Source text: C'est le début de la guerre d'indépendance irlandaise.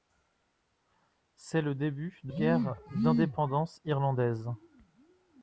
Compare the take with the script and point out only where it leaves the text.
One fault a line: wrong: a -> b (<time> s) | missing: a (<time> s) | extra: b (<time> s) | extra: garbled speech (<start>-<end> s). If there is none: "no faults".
missing: la (2.3 s)